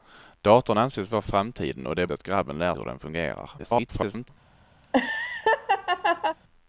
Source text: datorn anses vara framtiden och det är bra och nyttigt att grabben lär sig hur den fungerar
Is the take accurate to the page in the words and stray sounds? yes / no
no